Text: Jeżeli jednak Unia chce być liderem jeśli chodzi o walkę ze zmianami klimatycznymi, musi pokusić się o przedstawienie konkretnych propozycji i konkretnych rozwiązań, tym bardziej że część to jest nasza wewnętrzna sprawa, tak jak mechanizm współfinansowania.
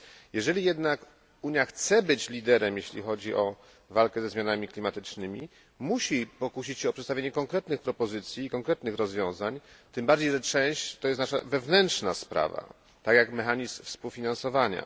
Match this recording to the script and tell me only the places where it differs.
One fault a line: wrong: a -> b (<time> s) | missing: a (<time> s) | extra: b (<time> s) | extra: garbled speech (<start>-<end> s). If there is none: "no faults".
no faults